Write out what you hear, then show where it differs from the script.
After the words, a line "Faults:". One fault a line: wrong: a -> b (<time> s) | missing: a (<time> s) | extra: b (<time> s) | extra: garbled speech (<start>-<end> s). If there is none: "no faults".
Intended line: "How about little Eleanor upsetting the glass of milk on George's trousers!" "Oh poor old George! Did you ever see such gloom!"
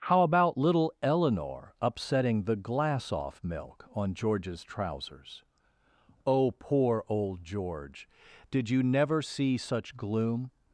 "How about little Eleanor upsetting the glass off milk on George's trousers!" "Oh poor old George! Did you never see such gloom!"
Faults:
wrong: of -> off (3.1 s)
wrong: ever -> never (8.8 s)